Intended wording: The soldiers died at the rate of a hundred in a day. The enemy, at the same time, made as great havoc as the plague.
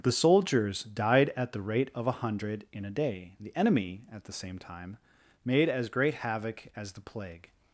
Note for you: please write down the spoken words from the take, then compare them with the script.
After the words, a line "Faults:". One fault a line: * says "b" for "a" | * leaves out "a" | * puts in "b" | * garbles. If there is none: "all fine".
The soldiers died at the rate of a hundred in a day. The enemy, at the same time, made as great havoc as the plague.
Faults:
all fine